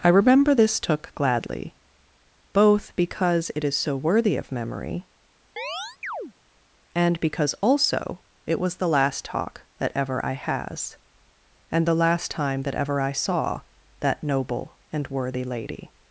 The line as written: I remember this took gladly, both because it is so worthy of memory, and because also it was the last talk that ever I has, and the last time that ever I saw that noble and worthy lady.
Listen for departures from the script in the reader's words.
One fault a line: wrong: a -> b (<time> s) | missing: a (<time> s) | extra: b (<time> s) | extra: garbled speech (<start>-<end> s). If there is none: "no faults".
no faults